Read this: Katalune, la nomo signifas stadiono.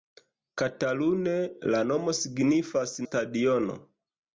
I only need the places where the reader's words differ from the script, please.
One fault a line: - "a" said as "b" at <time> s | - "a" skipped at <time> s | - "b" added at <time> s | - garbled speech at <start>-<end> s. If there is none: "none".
none